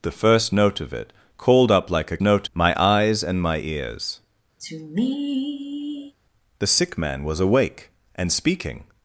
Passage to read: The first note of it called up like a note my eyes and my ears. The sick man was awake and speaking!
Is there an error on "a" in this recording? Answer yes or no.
no